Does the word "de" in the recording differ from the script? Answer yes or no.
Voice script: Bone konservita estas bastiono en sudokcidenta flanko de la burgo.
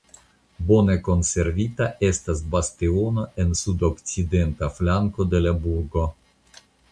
no